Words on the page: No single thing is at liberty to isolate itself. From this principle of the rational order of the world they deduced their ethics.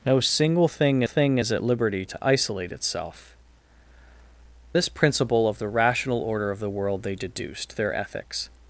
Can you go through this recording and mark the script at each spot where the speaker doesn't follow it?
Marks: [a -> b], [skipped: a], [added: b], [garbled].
No single thing [added: thing] is at liberty to isolate itself. [skipped: From] this principle of the rational order of the world they deduced their ethics.